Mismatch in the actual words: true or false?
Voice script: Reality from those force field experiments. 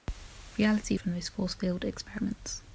false